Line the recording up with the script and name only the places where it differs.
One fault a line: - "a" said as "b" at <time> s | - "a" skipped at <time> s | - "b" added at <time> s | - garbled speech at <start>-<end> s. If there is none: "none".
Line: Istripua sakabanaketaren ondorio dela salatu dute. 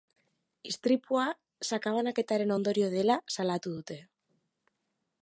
none